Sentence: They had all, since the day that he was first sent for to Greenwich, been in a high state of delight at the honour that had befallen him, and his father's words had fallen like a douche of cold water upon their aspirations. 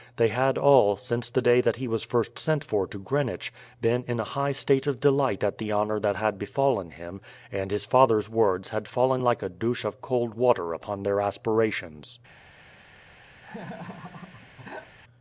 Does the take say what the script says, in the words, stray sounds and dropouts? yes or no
no